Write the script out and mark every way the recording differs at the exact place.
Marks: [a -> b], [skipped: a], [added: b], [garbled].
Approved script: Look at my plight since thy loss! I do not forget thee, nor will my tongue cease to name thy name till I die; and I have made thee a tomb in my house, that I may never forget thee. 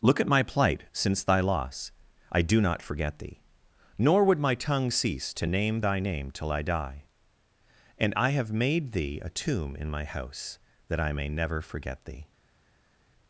Look at my plight since thy loss! I do not forget thee, nor [will -> would] my tongue cease to name thy name till I die; and I have made thee a tomb in my house, that I may never forget thee.